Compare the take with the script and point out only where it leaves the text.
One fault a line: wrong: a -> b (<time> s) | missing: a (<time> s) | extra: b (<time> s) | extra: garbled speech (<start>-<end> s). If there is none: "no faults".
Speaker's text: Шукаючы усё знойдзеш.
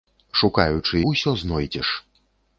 no faults